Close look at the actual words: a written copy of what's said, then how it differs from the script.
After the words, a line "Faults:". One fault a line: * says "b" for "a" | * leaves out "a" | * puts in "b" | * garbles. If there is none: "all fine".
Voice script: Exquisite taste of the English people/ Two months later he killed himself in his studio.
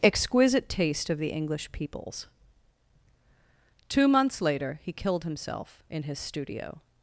Exquisite taste of the English peoples/ Two months later he killed himself in his studio.
Faults:
* says "peoples" for "people"